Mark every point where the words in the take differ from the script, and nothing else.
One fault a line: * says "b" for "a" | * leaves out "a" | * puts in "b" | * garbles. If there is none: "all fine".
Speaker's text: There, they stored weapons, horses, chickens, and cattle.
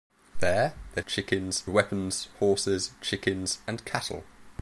* says "chickens" for "stored"